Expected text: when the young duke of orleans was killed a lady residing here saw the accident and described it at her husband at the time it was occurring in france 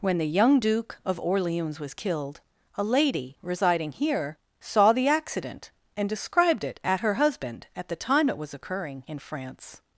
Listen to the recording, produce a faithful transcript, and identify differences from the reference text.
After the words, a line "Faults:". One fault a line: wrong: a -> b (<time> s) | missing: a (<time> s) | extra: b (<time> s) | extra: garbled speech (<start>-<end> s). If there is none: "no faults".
when the young duke of orleans was killed a lady residing here saw the accident and described it at her husband at the time it was occurring in france
Faults:
no faults